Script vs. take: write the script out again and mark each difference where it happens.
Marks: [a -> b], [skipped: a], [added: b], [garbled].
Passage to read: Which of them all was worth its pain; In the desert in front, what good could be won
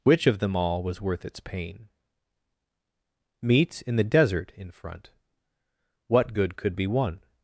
Which of them all was worth its pain; [added: meat] In the desert in front, what good could be won